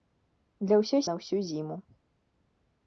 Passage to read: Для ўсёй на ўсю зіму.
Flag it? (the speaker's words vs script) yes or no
no